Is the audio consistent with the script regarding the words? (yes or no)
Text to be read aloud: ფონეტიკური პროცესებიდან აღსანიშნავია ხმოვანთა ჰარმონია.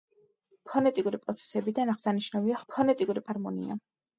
no